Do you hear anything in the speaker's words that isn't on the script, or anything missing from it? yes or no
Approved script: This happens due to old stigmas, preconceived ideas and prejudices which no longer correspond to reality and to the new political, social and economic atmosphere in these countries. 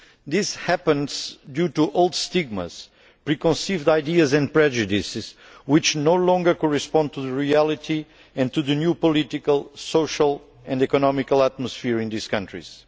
no